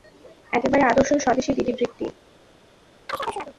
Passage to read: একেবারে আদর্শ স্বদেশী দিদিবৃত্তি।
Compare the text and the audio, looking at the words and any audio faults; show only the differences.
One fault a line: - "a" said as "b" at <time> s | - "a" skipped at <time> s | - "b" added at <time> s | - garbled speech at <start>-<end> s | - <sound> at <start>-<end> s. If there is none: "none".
- chirp at 3.1-3.6 s